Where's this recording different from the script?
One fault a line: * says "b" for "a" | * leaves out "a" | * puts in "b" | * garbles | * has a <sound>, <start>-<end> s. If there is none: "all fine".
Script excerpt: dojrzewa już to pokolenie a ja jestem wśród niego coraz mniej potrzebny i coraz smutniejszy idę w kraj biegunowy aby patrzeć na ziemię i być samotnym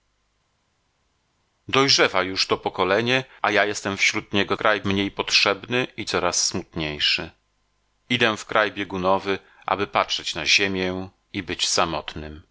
* says "kraj" for "coraz"